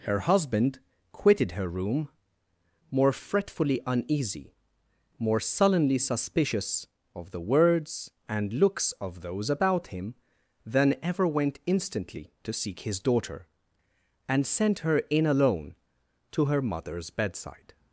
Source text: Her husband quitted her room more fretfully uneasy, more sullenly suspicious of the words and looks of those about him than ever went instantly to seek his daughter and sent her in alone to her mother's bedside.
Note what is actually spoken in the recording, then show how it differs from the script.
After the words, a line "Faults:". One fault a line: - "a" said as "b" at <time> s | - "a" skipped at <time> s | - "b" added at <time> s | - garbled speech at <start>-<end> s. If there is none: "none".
Her husband quitted her room more fretfully uneasy, more sullenly suspicious of the words and looks of those about him than ever went instantly to seek his daughter and sent her in alone to her mother's bedside.
Faults:
none